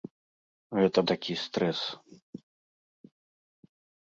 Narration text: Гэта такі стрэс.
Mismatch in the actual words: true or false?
false